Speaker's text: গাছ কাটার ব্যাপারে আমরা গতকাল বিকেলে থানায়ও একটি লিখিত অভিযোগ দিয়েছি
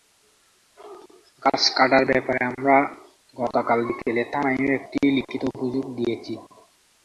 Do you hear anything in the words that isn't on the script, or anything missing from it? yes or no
no